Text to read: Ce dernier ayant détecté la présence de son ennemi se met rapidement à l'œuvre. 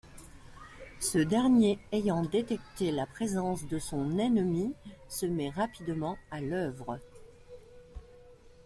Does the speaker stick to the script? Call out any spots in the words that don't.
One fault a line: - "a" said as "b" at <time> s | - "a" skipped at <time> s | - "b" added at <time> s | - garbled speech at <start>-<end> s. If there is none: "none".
none